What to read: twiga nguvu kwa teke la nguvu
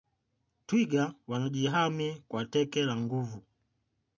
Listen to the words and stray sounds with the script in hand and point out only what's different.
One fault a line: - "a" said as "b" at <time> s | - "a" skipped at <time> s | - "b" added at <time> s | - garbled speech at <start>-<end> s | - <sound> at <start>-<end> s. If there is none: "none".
- "nguvu" said as "wanajihami" at 1.3 s